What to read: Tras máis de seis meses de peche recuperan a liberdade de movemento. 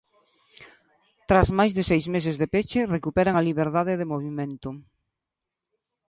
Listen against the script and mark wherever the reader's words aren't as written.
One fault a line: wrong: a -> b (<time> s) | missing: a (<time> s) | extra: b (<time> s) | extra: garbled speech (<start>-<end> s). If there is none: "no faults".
no faults